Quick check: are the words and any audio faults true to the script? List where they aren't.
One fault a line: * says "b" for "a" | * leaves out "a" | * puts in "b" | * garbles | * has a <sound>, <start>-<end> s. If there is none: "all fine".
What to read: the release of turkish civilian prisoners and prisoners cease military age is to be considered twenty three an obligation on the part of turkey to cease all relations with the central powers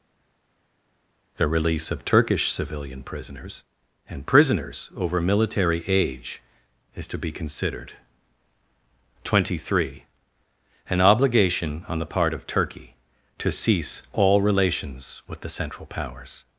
* says "over" for "cease"